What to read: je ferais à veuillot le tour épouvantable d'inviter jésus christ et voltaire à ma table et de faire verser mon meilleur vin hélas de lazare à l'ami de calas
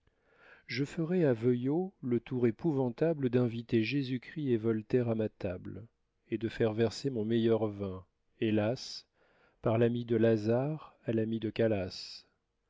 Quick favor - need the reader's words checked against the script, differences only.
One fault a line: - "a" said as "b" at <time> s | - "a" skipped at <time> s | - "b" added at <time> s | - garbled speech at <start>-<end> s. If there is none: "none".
- "par l'ami" added at 9.6 s